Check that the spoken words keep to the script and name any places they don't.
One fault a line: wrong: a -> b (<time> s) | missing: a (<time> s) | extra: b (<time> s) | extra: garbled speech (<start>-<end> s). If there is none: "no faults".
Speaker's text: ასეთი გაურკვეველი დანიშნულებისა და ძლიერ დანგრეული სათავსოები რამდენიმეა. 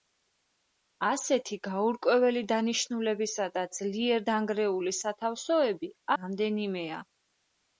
no faults